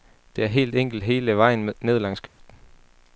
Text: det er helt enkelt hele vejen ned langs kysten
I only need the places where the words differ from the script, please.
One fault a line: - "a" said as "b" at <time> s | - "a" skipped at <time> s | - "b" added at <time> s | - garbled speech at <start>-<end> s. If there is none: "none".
none